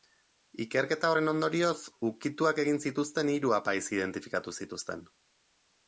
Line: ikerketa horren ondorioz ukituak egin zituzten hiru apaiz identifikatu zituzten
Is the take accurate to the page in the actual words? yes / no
yes